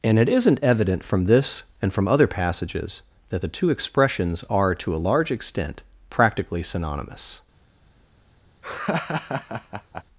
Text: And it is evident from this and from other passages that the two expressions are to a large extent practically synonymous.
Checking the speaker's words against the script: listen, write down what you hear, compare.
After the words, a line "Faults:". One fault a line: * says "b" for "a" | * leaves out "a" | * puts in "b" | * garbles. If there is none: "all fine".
And it isn't evident from this and from other passages that the two expressions are to a large extent practically synonymous.
Faults:
* says "isn't" for "is"